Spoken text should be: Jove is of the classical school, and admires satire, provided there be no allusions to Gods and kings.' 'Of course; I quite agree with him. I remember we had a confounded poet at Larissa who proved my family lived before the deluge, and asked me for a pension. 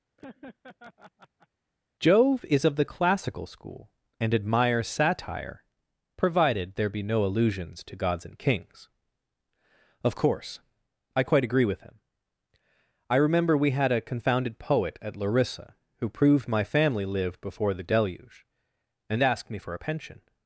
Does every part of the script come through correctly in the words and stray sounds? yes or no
no